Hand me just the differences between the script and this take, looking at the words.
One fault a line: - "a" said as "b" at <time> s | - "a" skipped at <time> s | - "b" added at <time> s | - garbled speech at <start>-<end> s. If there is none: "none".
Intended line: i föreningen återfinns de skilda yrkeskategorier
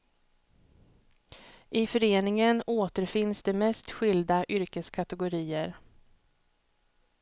- "mest" added at 3.5 s